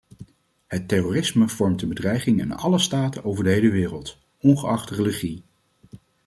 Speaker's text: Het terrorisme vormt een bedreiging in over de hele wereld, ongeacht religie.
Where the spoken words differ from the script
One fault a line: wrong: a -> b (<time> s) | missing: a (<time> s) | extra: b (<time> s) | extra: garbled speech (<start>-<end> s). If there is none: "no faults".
extra: alle staten (2.5 s)